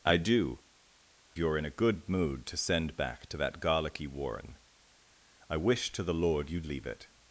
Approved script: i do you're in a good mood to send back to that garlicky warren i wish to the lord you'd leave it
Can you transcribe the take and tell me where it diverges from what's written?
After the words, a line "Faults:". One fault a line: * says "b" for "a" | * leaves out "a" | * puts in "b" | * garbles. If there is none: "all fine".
i do you're in a good mood to send back to that garlicky warren i wish to the lord you'd leave it
Faults:
all fine